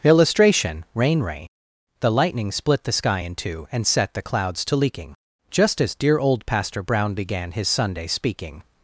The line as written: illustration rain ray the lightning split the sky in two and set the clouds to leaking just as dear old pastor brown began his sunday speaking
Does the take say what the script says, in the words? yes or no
yes